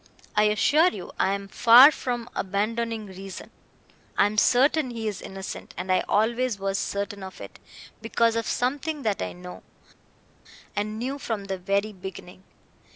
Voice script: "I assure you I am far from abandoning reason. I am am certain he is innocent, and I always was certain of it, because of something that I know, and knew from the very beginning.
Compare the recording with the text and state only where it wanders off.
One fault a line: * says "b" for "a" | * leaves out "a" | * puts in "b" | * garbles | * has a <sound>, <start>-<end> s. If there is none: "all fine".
* leaves out "am"